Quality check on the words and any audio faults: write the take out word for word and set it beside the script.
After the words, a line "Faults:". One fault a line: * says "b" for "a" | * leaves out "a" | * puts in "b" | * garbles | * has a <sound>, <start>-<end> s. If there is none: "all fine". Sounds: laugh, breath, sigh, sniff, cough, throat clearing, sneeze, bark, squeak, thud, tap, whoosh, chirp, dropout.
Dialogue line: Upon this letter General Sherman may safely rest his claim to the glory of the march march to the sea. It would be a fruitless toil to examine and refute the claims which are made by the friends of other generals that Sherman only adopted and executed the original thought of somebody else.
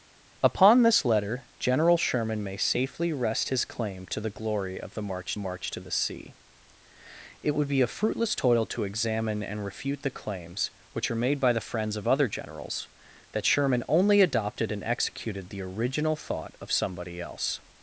Upon this letter General Sherman may safely rest his claim to the glory of the march march to the sea. It would be a fruitless toil to examine and refute the claims which are made by the friends of other generals that Sherman only adopted and executed the original thought of somebody else.
Faults:
all fine